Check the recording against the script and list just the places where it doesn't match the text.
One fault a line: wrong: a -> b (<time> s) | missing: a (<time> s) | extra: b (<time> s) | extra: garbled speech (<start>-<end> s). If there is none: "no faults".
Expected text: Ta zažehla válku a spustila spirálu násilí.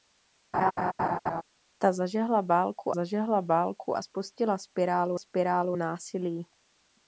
extra: zažehla válku (2.9 s)
extra: spirálu (5.2 s)